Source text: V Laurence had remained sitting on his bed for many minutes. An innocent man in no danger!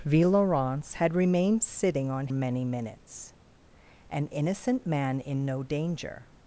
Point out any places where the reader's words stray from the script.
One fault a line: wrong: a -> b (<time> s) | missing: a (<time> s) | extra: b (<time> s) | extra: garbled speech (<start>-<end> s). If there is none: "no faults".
missing: his bed for (2.3 s)